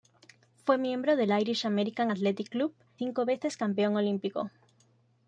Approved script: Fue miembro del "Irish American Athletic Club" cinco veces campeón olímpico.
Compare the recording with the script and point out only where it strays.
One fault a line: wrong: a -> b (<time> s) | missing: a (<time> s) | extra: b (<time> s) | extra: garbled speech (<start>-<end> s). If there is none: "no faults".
no faults